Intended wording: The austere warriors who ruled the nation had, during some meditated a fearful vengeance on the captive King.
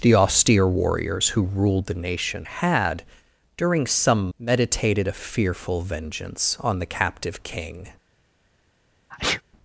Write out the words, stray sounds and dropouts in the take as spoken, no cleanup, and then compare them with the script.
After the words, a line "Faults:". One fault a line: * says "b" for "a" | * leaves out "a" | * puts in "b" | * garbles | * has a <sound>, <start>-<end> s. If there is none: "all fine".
The austere warriors who ruled the nation had, during some meditated a fearful vengeance on the captive King.
Faults:
* has a sneeze, 9.1-9.4 s